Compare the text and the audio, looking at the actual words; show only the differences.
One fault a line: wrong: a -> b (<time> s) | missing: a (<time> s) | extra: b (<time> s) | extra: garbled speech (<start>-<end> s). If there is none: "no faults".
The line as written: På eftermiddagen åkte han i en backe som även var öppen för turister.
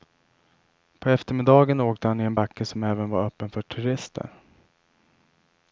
no faults